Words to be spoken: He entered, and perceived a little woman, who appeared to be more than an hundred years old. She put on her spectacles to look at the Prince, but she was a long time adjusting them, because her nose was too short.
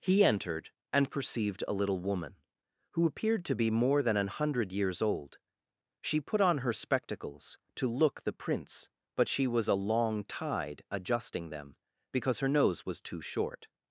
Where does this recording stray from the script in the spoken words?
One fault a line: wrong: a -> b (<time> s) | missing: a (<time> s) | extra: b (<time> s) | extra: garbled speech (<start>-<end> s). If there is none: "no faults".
missing: at (8.2 s)
wrong: time -> tide (10.2 s)